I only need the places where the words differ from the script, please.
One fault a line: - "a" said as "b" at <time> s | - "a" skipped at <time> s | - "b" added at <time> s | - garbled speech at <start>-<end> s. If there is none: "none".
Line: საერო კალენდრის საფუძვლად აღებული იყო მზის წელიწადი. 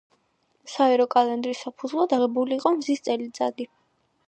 none